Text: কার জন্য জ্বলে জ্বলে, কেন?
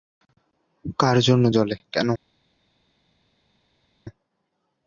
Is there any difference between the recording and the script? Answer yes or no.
yes